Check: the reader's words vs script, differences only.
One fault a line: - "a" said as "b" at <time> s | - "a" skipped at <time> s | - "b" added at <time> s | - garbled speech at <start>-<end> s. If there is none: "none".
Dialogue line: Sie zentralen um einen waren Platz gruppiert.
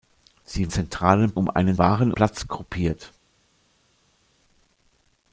none